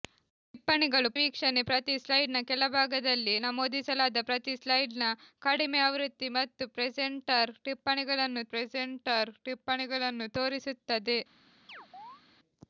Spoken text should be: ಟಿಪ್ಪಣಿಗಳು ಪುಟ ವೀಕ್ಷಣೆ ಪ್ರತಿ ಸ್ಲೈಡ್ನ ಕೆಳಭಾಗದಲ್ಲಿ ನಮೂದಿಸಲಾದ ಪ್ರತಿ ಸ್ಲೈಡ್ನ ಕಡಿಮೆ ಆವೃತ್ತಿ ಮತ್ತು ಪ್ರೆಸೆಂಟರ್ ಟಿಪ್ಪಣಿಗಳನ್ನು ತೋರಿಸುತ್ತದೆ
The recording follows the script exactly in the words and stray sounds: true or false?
false